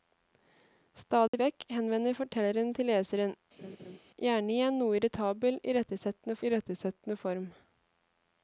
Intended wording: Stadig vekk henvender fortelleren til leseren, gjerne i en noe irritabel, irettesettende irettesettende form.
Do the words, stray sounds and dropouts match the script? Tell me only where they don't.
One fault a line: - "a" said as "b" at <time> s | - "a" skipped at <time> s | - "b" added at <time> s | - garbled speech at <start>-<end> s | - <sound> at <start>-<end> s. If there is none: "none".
- dropout at 1.3-1.3 s
- laugh at 3.6-4.0 s